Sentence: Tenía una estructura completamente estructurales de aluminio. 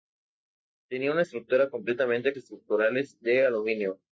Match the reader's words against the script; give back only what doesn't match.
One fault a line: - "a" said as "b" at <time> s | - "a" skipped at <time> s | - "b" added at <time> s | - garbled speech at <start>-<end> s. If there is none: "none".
none